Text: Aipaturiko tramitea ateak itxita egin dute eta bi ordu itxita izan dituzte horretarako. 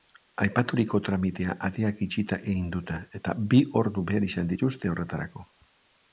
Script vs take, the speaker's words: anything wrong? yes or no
yes